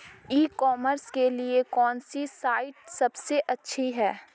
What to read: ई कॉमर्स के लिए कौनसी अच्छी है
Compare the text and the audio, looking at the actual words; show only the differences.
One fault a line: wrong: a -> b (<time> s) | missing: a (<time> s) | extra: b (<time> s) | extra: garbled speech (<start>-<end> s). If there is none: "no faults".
extra: साइट सबसे (2.3 s)